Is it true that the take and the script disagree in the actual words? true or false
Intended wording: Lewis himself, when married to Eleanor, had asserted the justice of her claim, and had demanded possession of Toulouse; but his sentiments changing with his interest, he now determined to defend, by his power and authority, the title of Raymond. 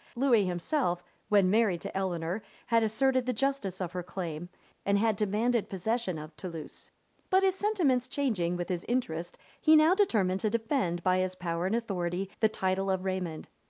false